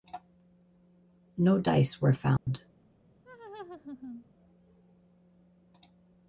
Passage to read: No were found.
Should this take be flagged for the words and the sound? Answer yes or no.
yes